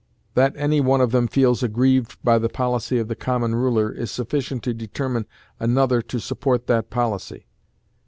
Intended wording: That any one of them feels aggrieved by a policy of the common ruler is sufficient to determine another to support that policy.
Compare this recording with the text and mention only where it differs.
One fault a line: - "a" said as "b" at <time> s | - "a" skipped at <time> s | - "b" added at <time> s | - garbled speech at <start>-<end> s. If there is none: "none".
- "a" said as "the" at 2.4 s